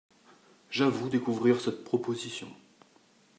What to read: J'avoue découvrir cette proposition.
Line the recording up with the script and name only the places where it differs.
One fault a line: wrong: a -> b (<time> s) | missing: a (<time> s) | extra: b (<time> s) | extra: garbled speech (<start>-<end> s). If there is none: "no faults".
no faults